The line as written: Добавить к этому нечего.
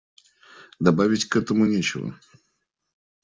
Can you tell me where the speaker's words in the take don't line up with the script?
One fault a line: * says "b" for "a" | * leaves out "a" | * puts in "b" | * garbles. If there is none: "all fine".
all fine